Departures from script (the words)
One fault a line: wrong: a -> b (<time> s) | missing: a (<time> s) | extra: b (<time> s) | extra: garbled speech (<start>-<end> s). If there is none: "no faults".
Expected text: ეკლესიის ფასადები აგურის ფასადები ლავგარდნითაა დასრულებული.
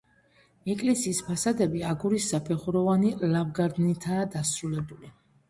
wrong: ფასადები -> საფეხუროვანი (2.3 s)